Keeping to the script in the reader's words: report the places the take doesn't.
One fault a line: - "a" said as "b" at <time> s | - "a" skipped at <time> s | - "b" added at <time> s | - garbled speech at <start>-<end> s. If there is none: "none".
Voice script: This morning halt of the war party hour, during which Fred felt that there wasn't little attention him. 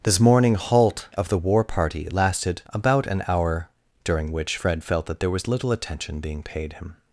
- "lasted about an" added at 2.1 s
- "wasn't" said as "was" at 5.3 s
- "being paid" added at 6.2 s